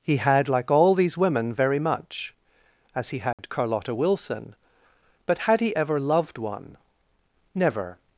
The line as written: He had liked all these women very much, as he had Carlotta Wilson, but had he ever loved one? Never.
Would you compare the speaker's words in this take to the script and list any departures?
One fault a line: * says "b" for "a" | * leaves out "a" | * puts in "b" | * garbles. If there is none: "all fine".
* says "like" for "liked"